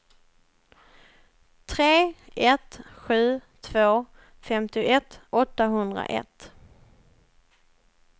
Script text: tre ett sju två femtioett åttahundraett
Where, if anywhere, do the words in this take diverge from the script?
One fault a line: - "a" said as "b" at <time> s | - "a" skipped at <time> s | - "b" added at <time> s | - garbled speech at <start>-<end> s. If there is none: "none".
none